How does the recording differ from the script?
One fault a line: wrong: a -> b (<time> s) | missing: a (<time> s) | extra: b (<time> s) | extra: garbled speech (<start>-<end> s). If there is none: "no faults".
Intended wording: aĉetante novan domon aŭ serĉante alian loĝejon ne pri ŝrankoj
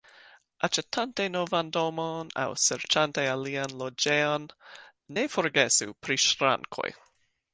extra: forgesu (5.4 s)